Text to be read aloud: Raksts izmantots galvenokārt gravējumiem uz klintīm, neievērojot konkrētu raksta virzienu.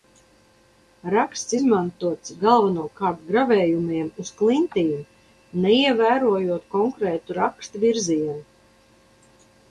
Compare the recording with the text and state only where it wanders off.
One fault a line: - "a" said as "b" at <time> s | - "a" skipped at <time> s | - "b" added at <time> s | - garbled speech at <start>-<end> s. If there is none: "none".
none